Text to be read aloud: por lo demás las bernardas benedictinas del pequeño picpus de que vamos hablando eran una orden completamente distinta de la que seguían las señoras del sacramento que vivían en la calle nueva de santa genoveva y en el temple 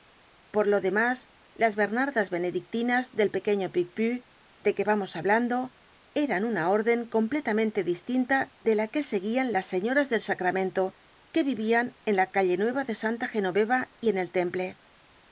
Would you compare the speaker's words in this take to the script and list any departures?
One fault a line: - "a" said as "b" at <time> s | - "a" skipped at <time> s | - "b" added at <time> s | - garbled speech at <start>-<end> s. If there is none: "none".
none